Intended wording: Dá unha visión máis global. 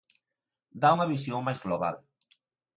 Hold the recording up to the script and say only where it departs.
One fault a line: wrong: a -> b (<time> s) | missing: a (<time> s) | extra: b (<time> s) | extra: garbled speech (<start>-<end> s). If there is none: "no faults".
no faults